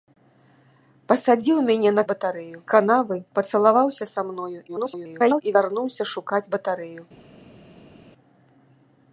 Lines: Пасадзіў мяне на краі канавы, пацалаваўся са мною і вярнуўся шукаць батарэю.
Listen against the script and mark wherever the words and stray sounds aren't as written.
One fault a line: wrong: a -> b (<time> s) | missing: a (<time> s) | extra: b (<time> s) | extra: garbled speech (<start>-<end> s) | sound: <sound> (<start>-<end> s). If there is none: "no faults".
wrong: краі -> батарэю (2.1 s)
extra: garbled speech (4.7-5.4 s)